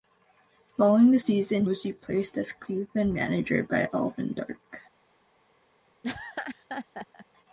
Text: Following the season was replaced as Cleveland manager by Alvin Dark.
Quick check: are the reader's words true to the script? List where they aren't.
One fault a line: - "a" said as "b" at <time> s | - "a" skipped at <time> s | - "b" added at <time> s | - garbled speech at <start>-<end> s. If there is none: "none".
none